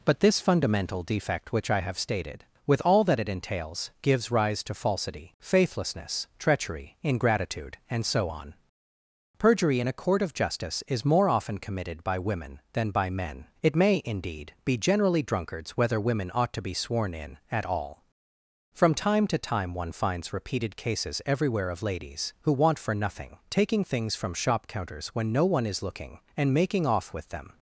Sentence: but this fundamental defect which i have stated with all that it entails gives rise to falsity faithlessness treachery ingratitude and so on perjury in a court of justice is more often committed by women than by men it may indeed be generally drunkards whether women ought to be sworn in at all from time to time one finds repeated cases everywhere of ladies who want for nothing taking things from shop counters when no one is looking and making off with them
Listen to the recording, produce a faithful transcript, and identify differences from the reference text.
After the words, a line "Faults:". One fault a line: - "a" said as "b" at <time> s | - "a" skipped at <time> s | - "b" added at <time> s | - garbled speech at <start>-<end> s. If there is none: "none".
but this fundamental defect which i have stated with all that it entails gives rise to falsity faithlessness treachery ingratitude and so on perjury in a court of justice is more often committed by women than by men it may indeed be generally drunkards whether women ought to be sworn in at all from time to time one finds repeated cases everywhere of ladies who want for nothing taking things from shop counters when no one is looking and making off with them
Faults:
none